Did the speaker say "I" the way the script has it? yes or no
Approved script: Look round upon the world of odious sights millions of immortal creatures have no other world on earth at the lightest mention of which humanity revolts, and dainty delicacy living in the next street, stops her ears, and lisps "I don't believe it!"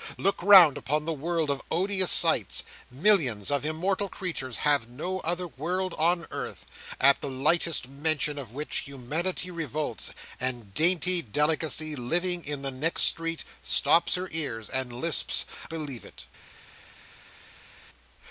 no